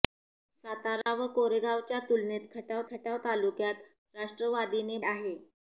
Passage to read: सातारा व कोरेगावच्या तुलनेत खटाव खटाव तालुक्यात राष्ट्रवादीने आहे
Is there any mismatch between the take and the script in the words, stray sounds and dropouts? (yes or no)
yes